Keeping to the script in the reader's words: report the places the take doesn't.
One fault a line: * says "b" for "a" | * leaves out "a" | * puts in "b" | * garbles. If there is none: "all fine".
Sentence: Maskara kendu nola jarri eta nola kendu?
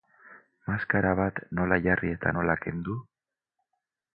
* says "bat" for "kendu"